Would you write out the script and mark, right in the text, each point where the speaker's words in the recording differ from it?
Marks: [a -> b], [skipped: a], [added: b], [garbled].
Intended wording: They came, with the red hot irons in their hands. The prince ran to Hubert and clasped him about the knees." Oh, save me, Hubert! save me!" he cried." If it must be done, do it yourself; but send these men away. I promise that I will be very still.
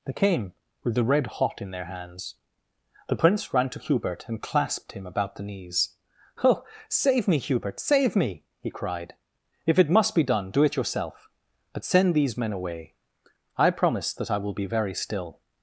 They came, with the red hot [skipped: irons] in their hands. The prince ran to Hubert and clasped him about the knees." Oh, save me, Hubert! save me!" he cried." If it must be done, do it yourself; but send these men away. I promise that I will be very still.